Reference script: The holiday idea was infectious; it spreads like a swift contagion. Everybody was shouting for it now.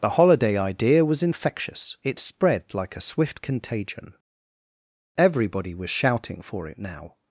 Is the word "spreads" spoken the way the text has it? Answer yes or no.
no